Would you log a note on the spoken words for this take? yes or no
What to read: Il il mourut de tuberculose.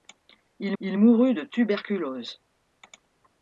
no